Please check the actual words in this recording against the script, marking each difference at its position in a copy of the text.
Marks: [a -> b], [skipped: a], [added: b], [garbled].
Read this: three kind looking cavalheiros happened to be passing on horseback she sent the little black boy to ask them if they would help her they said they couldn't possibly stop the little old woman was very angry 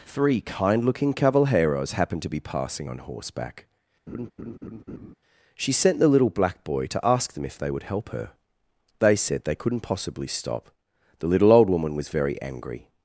three kind looking cavalheiros happened to be passing on horseback she sent the little black boy to ask them if they would help her they said they couldn't possibly stop the little old woman was very angry